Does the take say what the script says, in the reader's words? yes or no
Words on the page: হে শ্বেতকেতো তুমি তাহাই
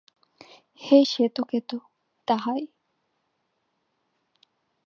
no